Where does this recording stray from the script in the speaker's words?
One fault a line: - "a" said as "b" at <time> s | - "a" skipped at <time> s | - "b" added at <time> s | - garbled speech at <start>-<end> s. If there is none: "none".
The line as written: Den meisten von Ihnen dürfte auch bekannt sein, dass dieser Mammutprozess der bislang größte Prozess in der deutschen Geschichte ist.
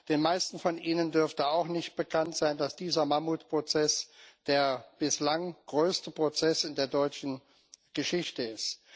- "nicht" added at 1.7 s